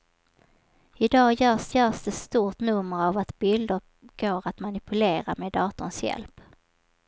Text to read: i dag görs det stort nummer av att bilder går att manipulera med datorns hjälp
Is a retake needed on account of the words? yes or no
yes